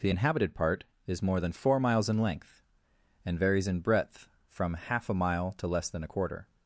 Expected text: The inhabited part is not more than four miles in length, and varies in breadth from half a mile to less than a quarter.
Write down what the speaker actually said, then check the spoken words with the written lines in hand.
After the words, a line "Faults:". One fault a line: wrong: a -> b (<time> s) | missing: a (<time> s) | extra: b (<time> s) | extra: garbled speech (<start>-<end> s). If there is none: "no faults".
The inhabited part is more than four miles in length, and varies in breadth from half a mile to less than a quarter.
Faults:
missing: not (1.2 s)